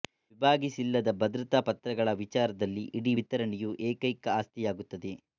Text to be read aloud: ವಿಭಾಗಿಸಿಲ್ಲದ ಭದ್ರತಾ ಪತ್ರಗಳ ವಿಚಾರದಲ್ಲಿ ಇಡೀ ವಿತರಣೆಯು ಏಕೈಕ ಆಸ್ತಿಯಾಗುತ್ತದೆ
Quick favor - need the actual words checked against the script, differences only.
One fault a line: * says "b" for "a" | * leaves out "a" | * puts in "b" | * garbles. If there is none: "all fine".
all fine